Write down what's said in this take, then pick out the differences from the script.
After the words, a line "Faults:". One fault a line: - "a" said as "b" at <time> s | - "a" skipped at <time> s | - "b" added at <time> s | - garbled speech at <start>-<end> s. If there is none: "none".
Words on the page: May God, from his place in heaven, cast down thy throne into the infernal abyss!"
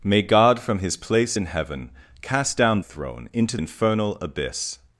May God, from his place in heaven, cast down throne into infernal abyss!"
Faults:
- "thy" skipped at 2.8 s
- "the" skipped at 3.6 s